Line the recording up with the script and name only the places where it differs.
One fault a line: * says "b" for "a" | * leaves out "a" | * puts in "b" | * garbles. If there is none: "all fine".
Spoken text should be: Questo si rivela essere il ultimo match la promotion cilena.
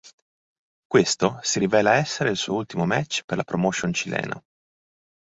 * puts in "suo"
* puts in "per"